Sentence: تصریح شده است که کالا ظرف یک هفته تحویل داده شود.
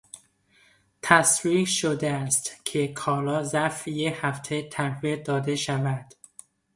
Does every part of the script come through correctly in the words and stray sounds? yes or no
yes